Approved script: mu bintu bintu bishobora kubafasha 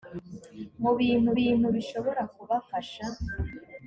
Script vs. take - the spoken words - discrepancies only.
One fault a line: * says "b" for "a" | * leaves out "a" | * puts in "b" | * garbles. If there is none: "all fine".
all fine